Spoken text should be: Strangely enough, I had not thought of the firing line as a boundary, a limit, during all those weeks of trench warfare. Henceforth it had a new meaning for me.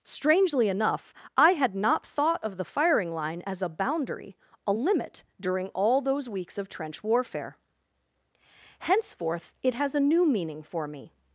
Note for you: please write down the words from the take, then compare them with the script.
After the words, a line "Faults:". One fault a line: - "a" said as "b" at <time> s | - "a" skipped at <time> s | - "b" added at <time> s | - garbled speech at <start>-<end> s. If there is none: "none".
Strangely enough, I had not thought of the firing line as a boundary, a limit, during all those weeks of trench warfare. Henceforth it has a new meaning for me.
Faults:
- "had" said as "has" at 9.7 s